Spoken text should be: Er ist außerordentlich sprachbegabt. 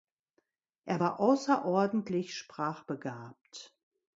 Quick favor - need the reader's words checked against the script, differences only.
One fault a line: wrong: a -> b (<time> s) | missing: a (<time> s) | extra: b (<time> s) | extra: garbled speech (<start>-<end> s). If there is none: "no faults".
wrong: ist -> war (1.0 s)